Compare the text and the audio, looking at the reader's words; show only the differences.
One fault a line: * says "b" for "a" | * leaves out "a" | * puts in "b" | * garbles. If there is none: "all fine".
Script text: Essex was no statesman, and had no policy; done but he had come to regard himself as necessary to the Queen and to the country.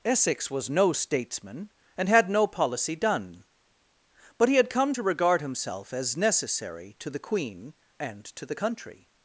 all fine